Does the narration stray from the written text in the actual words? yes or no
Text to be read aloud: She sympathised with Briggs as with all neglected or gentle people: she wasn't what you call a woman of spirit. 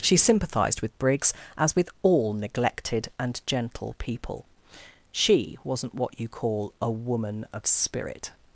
yes